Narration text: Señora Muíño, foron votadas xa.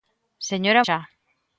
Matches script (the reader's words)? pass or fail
fail